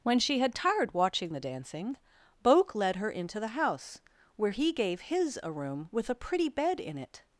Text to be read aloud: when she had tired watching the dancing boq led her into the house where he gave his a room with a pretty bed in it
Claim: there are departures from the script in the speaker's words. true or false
false